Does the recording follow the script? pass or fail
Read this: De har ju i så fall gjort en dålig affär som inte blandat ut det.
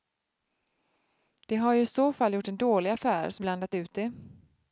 fail